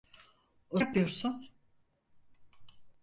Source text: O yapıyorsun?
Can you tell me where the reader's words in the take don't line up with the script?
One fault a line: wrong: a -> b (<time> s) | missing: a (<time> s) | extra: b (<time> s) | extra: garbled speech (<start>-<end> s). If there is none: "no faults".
no faults